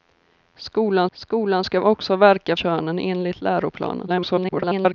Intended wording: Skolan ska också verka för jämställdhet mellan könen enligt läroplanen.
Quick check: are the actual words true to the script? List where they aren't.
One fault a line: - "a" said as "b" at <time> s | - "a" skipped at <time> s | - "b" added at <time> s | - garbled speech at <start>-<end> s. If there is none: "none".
- "skolan" added at 1.1 s
- "för jämställdhet mellan" skipped at 2.6 s
- garbled speech at 4.1-4.9 s